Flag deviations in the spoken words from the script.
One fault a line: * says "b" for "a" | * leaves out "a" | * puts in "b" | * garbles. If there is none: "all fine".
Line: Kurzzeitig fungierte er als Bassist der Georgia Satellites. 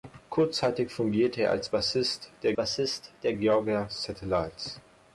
* puts in "Bassist der"